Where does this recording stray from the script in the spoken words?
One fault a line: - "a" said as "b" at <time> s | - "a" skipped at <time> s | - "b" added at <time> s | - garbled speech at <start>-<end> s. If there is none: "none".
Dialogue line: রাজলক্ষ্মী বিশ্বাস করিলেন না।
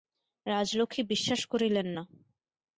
none